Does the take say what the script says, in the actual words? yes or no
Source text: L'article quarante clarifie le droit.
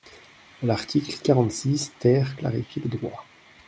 no